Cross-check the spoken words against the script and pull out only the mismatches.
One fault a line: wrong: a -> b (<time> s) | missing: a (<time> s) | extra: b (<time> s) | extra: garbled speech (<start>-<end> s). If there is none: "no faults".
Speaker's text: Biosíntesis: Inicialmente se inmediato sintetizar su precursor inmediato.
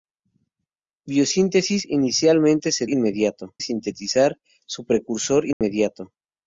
no faults